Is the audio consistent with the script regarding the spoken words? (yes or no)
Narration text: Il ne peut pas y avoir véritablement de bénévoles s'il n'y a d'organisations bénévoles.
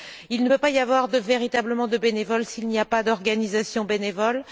no